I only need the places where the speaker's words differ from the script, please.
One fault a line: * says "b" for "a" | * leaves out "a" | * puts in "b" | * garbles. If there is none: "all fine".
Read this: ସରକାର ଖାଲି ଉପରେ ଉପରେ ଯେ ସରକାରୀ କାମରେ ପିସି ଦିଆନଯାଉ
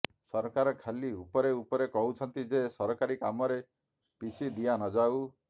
* puts in "କହୁଛନ୍ତି"